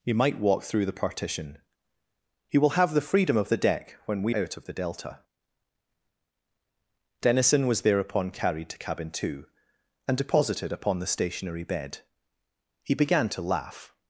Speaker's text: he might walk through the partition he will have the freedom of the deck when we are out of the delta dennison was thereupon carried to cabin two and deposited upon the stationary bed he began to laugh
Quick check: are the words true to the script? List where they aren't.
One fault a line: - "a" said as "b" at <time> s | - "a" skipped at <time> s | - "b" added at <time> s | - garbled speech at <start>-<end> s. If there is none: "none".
- "are" skipped at 4.3 s